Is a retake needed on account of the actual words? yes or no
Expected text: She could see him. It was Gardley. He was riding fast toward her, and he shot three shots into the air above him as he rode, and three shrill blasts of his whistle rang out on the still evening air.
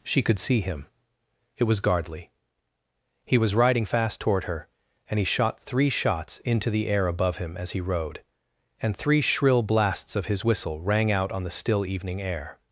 no